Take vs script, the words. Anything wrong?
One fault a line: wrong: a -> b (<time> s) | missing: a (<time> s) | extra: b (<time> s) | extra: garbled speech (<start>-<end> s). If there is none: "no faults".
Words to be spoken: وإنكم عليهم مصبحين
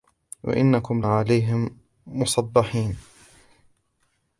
no faults